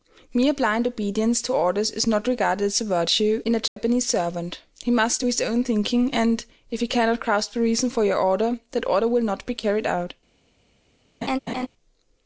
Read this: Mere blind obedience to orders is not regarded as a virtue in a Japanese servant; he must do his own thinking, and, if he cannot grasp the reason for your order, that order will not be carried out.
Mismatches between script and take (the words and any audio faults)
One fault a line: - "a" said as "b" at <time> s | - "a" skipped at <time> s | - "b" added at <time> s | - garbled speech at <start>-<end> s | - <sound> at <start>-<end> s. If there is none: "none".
- dropout at 3.7-3.8 s
- laugh at 11.2-11.7 s